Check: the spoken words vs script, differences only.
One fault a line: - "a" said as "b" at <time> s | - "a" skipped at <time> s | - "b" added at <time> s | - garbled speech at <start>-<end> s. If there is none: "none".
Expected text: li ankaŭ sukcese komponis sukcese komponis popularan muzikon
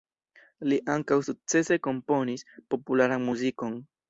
- "sukcese komponis" skipped at 2.5 s